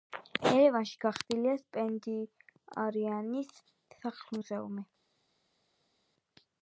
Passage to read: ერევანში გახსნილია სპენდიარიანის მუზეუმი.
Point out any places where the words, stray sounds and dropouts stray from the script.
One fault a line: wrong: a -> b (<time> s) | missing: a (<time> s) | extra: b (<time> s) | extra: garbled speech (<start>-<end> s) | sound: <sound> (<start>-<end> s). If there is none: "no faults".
extra: სახლ (4.0 s)